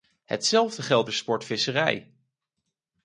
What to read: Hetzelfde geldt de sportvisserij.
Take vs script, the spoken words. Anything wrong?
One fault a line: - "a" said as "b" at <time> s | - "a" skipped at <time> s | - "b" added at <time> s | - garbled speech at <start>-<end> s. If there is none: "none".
none